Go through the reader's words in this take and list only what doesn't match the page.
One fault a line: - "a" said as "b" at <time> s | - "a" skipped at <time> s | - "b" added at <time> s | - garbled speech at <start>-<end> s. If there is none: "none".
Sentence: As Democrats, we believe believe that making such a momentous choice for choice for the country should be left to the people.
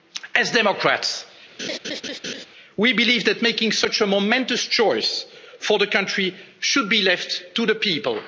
- "believe" skipped at 3.2 s
- "choice for" skipped at 5.8 s